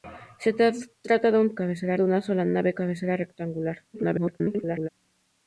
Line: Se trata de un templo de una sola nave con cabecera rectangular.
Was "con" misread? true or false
true